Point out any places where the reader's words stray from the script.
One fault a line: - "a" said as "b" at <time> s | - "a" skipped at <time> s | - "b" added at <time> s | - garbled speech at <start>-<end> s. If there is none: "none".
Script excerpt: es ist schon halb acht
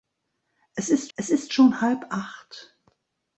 - "es ist" added at 1.1 s